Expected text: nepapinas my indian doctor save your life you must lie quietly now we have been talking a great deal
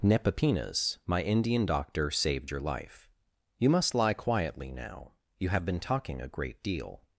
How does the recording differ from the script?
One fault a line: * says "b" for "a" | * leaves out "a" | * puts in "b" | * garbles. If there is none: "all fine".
* says "saved" for "save"
* says "you" for "we"